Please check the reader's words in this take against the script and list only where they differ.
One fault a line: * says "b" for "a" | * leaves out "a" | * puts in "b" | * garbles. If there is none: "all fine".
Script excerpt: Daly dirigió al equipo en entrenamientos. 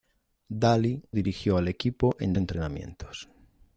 all fine